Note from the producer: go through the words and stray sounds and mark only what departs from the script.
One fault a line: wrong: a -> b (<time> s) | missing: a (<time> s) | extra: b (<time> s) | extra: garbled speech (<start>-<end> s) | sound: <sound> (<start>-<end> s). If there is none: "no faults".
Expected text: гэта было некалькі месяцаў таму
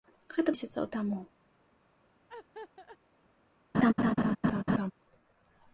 missing: было некалькі (0.5 s)
sound: laugh (2.3-3.0 s)
sound: laugh (3.7-4.9 s)